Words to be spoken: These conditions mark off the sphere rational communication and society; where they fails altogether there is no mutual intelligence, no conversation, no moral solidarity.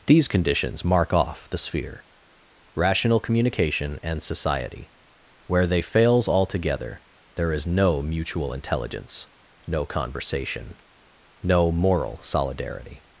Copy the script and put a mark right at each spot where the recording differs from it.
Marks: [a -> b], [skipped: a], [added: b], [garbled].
These conditions mark off the sphere rational communication and society; where they fails altogether there is no mutual intelligence, no conversation, no moral solidarity.